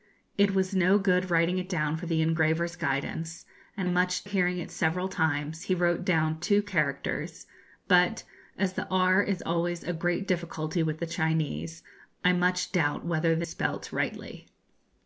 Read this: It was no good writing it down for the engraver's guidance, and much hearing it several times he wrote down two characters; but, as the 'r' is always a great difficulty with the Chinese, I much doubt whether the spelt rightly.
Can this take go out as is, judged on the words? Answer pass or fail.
pass